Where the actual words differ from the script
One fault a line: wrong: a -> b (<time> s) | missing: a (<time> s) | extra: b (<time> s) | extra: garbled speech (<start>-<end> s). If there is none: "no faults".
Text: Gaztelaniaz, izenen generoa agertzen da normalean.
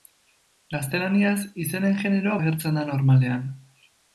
no faults